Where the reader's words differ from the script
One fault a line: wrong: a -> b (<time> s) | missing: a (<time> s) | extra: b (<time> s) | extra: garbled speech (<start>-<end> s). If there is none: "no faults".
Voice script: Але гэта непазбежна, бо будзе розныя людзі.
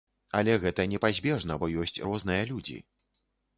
wrong: будзе -> ёсць (1.8 s)